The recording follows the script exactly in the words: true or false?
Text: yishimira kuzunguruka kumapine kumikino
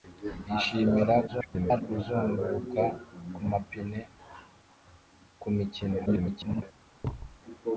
false